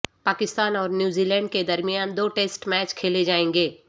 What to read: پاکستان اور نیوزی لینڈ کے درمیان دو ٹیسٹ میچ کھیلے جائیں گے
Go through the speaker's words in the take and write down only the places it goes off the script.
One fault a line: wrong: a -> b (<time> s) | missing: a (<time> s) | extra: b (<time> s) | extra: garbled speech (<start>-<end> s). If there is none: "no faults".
no faults